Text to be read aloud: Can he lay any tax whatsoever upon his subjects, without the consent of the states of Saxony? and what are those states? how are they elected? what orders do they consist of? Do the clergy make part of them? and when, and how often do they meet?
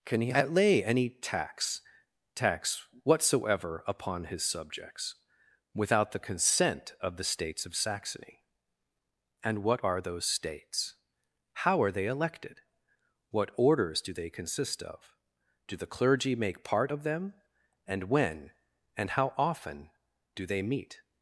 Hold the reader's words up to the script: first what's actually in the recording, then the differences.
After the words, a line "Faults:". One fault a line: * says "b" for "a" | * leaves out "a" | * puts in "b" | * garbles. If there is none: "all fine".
Can he lay any tax tax whatsoever upon his subjects, without the consent of the states of Saxony? and what are those states? how are they elected? what orders do they consist of? Do the clergy make part of them? and when, and how often do they meet?
Faults:
* puts in "tax"